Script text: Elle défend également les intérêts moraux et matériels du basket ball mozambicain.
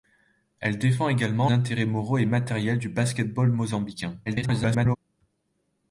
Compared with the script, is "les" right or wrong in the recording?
wrong